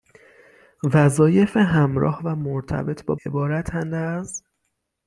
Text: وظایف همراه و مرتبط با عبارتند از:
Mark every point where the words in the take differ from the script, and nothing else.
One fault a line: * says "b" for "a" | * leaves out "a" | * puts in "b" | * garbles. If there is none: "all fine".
all fine